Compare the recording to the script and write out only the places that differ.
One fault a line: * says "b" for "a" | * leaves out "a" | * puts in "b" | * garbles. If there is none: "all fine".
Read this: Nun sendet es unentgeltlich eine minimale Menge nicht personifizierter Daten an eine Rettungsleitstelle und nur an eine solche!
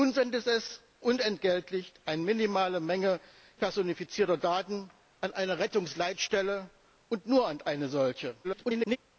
* leaves out "nicht"
* garbles